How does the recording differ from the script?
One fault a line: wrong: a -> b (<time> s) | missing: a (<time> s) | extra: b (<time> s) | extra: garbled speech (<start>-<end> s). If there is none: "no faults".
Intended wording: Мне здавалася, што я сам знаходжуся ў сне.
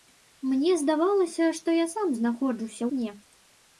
missing: ў (2.8 s)